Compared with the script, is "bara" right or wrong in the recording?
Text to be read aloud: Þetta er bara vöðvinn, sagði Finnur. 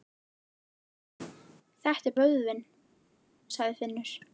wrong